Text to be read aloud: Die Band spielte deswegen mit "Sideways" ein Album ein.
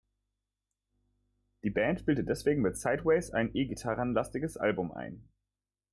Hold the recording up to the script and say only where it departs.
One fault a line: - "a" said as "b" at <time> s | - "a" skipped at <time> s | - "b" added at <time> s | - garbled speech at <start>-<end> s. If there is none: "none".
- "E Gitarren lastiges" added at 3.5 s